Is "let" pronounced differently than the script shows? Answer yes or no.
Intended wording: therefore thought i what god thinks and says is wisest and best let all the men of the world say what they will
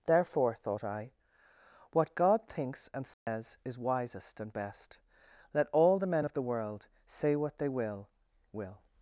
no